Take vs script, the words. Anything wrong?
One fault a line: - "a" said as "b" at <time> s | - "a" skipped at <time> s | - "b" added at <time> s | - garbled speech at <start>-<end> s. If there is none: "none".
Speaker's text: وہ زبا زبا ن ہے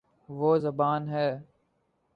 - "زبا" skipped at 0.9 s